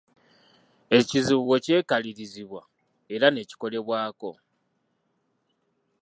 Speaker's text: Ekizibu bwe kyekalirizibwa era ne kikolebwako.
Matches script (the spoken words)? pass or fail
pass